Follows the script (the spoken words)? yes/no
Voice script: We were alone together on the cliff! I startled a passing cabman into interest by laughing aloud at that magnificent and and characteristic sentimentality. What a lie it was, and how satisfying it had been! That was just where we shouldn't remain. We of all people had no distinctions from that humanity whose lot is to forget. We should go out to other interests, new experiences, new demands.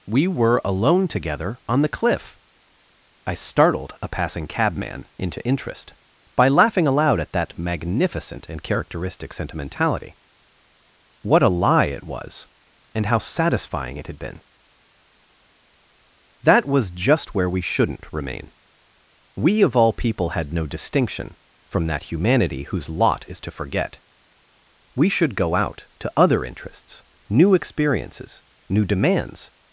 no